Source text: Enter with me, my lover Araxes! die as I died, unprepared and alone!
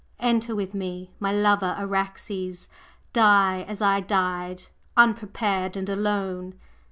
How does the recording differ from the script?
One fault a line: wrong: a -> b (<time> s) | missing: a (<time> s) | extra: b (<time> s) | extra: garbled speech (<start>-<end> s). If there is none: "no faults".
no faults